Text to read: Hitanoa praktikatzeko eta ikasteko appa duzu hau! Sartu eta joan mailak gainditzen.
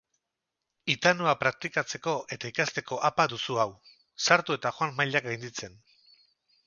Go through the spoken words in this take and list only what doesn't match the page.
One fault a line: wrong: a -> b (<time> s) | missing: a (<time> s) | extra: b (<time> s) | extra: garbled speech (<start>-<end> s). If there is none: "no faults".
no faults